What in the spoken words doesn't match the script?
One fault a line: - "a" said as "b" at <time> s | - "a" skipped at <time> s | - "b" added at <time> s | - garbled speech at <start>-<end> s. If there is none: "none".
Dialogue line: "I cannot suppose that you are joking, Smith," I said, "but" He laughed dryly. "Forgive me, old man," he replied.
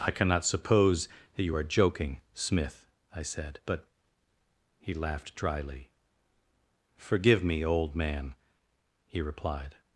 none